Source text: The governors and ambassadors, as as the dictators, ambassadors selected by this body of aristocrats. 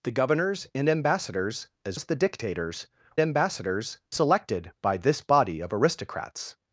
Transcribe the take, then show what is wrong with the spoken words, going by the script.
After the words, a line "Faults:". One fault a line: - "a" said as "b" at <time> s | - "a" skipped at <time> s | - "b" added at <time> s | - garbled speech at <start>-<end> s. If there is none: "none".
The governors and ambassadors, as as the dictators, ambassadors selected by this body of aristocrats.
Faults:
none